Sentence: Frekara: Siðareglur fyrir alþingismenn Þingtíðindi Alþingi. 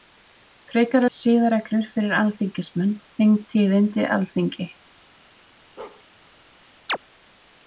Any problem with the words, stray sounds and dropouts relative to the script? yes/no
yes